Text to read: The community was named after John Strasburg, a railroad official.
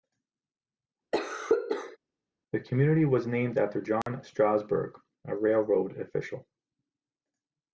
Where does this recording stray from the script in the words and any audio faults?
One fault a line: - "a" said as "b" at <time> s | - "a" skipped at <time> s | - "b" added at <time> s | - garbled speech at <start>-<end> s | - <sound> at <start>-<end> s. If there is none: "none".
- cough at 1.1-2.0 s
- dropout at 4.0-4.1 s